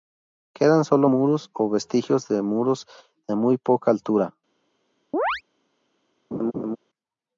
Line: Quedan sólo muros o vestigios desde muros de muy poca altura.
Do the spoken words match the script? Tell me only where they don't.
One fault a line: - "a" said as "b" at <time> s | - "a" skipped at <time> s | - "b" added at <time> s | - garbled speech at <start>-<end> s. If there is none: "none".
- "desde" said as "de" at 2.3 s